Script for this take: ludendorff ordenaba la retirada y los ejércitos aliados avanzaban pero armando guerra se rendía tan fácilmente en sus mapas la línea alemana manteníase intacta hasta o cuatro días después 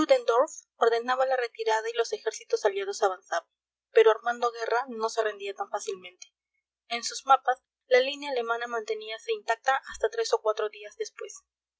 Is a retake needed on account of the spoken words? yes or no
yes